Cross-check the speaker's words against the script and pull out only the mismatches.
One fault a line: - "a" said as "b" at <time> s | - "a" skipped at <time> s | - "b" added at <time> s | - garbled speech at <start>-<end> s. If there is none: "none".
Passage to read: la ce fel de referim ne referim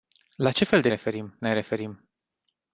none